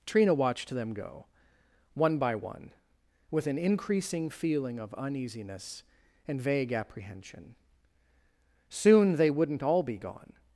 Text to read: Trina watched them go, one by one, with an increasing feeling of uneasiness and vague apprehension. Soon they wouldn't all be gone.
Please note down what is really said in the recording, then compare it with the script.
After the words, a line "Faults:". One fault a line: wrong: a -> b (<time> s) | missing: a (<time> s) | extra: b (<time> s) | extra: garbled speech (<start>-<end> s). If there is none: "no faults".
Trina watched them go, one by one, with an increasing feeling of uneasiness and vague apprehension. Soon they wouldn't all be gone.
Faults:
no faults